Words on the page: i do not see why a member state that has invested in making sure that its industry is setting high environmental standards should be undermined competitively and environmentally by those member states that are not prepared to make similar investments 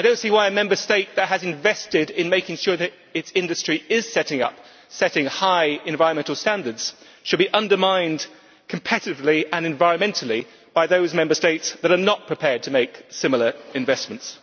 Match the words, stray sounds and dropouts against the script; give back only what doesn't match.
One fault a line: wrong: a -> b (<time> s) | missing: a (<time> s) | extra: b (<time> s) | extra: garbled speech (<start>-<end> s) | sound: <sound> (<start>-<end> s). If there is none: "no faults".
no faults